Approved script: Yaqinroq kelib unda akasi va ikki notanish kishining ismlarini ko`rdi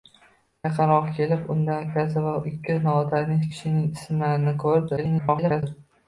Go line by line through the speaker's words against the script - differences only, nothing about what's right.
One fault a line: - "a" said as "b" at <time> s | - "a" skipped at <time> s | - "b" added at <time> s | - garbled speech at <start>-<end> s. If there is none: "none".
- garbled speech at 5.0-5.6 s